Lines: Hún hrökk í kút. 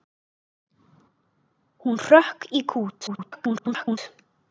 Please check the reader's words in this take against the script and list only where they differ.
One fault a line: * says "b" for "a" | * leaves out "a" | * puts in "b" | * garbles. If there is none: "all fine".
* garbles